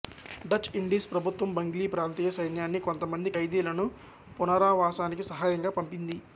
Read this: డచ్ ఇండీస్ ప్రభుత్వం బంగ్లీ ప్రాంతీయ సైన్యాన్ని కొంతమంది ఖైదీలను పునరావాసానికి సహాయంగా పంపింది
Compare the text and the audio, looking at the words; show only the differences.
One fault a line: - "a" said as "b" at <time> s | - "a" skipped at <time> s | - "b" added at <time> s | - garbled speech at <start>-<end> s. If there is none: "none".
none